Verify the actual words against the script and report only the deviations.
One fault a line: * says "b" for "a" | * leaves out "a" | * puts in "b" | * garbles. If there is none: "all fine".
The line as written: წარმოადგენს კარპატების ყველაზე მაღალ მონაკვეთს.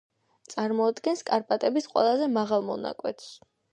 all fine